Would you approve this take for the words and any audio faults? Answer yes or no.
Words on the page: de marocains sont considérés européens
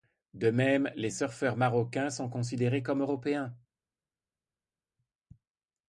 no